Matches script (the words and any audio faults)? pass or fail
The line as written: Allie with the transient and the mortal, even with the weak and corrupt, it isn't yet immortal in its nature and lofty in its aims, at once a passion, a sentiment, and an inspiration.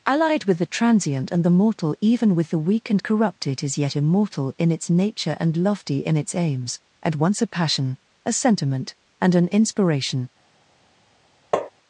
fail